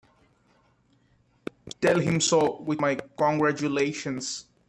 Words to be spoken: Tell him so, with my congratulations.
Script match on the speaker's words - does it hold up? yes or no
yes